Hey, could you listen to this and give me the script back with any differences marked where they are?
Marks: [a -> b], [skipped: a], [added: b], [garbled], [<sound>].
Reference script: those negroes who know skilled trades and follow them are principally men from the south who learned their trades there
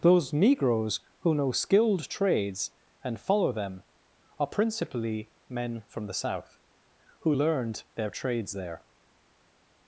those negroes who know skilled trades and follow them are principally men from the south who learned their trades there